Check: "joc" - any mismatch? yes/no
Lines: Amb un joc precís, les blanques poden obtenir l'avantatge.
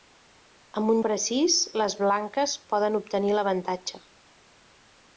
yes